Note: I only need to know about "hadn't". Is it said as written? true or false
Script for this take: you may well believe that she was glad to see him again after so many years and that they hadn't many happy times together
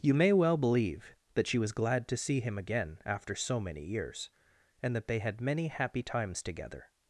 false